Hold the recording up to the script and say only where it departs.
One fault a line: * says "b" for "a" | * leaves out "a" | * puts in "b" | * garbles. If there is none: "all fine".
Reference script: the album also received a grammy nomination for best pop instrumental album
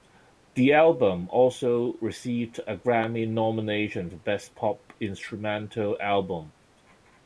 all fine